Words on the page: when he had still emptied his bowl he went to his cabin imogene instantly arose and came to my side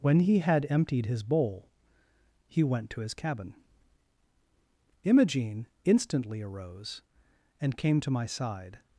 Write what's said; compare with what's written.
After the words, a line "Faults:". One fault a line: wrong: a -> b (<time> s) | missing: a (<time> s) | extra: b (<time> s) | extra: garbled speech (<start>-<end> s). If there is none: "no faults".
when he had emptied his bowl he went to his cabin imogene instantly arose and came to my side
Faults:
missing: still (0.7 s)